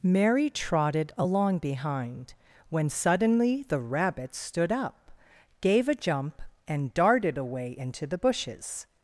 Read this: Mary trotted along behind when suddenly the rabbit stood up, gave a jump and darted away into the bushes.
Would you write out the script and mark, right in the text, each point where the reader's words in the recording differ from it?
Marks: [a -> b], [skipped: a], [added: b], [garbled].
Mary trotted along behind when suddenly the rabbit stood up, gave a jump and darted away into the bushes.